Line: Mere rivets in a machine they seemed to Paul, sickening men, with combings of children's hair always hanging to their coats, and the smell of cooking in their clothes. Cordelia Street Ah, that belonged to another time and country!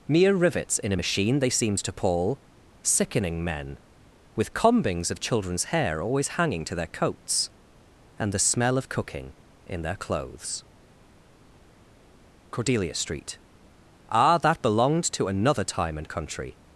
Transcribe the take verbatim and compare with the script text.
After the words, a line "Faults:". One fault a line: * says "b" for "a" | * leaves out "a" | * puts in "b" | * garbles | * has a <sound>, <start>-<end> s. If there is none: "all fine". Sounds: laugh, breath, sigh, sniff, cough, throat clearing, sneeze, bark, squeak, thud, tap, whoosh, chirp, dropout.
Mere rivets in a machine they seemed to Paul, sickening men, with combings of children's hair always hanging to their coats, and the smell of cooking in their clothes. Cordelia Street Ah, that belonged to another time and country!
Faults:
all fine